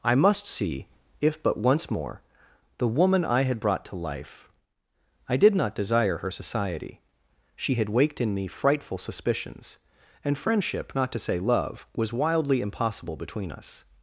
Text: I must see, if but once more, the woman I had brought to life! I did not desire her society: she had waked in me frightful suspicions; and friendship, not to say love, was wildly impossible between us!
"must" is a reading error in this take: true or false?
false